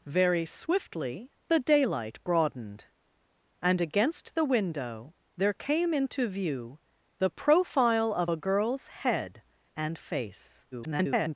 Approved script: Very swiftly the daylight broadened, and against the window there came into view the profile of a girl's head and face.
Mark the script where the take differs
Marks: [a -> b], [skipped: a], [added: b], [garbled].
Very swiftly the daylight broadened, and against the window there came into view the profile of a girl's head and face. [garbled]